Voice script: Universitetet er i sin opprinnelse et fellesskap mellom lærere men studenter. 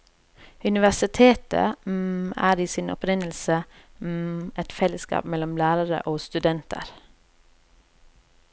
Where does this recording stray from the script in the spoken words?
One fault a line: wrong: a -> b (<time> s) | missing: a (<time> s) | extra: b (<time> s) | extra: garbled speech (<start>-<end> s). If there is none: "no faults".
wrong: men -> og (6.0 s)